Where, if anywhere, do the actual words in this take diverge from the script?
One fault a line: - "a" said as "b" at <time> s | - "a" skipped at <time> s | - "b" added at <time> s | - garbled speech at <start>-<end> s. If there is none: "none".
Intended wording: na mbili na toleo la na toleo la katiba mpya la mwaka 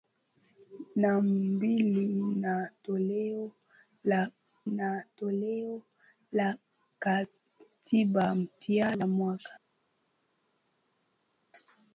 none